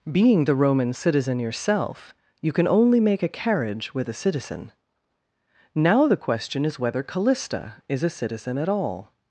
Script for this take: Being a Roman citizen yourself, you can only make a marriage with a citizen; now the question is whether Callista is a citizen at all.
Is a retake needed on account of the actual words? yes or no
yes